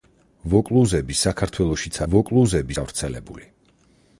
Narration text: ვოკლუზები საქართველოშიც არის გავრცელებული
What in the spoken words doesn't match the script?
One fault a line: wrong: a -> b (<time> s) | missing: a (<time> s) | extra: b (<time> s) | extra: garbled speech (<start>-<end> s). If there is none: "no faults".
wrong: არის -> ვოკლუზები (2.1 s)